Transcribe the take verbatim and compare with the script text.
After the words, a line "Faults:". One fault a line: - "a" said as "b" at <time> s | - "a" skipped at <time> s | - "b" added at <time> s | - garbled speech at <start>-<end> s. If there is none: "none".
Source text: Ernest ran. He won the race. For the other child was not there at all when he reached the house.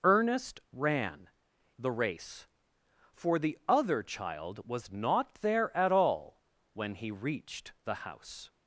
Ernest ran. The race. For the other child was not there at all when he reached the house.
Faults:
- "He won" skipped at 1.3 s